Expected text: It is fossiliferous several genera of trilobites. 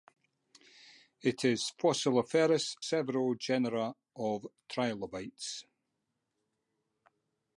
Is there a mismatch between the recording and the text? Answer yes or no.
no